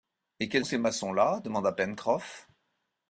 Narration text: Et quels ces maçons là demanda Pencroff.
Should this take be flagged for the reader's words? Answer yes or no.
no